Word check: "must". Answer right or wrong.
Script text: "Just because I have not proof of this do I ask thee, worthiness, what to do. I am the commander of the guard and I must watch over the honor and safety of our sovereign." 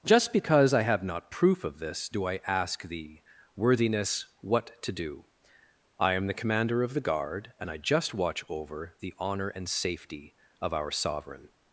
wrong